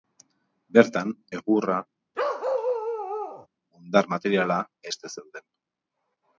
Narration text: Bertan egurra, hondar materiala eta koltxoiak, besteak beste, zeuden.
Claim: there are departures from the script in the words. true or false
true